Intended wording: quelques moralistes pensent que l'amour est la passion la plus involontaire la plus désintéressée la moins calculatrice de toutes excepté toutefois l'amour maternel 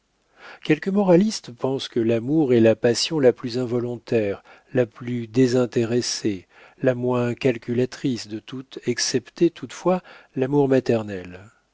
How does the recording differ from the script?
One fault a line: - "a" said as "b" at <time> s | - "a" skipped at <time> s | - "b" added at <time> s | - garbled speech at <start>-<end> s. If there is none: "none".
none